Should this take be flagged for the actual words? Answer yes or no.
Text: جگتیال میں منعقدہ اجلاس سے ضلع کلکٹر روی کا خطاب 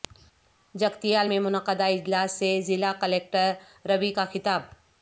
no